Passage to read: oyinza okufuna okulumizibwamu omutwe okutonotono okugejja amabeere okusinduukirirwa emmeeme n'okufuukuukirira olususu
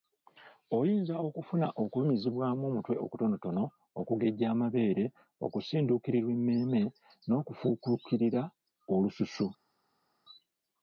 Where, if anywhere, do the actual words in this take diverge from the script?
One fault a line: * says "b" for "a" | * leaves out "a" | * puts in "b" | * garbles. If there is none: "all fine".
all fine